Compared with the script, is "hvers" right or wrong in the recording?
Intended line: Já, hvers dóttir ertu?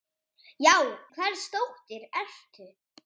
right